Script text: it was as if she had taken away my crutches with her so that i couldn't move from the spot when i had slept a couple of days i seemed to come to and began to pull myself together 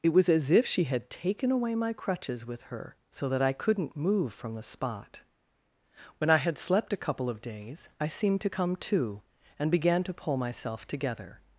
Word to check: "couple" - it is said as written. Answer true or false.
true